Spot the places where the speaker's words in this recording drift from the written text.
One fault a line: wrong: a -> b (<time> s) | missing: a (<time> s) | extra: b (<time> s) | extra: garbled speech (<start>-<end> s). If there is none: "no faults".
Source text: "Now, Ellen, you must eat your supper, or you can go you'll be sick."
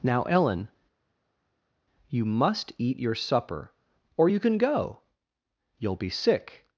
no faults